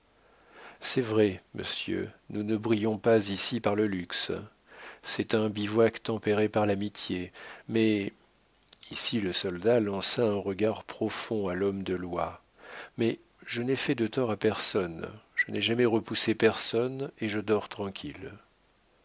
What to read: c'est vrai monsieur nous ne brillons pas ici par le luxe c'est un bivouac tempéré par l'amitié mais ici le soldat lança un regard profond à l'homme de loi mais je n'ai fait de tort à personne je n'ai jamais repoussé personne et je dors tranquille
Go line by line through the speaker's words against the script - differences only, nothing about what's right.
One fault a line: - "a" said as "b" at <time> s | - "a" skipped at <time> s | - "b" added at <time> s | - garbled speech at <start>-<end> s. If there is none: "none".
none